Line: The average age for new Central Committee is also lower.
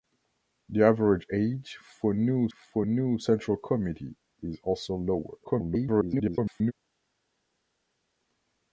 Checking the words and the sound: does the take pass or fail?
fail